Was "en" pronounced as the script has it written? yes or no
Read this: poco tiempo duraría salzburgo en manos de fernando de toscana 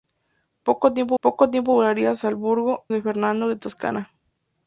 no